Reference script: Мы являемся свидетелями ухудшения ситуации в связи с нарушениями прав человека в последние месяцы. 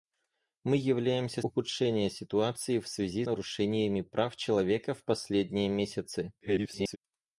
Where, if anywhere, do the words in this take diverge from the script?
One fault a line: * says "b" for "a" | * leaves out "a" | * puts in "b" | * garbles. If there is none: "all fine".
* leaves out "свидетелями"
* leaves out "с"
* garbles